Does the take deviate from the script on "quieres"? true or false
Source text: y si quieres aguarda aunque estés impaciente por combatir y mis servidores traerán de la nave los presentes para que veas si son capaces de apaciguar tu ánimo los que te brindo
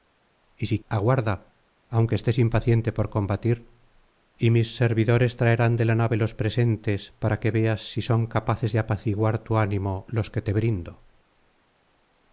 true